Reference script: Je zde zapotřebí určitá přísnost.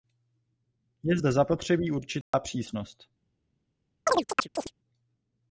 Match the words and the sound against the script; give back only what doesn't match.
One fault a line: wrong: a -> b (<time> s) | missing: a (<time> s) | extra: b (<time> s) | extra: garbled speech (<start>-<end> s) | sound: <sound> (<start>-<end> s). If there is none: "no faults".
sound: dropout (2.2-2.3 s)
sound: chirp (4.1-4.7 s)